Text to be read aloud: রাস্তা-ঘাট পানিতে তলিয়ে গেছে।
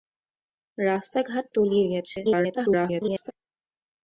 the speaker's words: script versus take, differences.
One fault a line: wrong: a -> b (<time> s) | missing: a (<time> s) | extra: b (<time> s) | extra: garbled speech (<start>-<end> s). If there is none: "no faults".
missing: পানিতে (1.4 s)
extra: garbled speech (2.2-3.3 s)